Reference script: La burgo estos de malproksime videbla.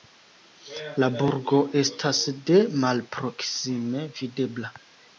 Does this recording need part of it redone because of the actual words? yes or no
yes